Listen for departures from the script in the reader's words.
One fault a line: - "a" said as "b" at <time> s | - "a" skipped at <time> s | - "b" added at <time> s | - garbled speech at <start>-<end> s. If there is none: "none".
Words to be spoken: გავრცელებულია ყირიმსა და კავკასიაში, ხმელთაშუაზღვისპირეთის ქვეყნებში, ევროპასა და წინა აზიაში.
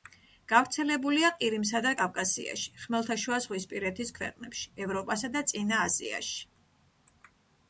none